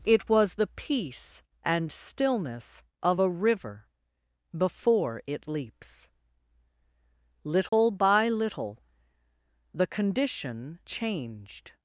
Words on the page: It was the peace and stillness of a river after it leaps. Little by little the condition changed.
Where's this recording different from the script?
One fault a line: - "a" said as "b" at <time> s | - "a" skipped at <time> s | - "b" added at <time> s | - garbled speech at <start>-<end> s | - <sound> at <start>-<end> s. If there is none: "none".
- "after" said as "before" at 4.6 s
- dropout at 7.7-7.7 s